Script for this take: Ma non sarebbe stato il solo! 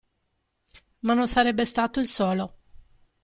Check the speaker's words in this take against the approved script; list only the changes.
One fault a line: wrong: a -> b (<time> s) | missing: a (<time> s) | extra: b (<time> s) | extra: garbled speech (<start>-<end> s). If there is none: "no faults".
no faults